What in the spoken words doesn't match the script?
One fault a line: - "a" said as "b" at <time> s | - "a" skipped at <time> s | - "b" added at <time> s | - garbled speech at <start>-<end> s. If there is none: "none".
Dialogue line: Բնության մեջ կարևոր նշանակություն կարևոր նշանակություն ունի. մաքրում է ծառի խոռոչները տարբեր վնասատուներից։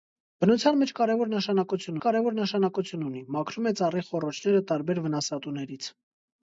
none